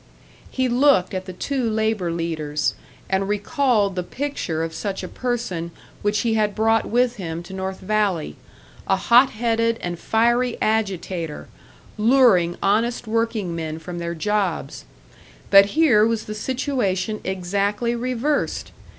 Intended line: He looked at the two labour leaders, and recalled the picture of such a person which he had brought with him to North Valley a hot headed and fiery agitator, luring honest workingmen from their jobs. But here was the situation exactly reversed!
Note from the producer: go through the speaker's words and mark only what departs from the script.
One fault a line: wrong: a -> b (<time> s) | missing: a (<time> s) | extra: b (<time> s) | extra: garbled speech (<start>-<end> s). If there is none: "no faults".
no faults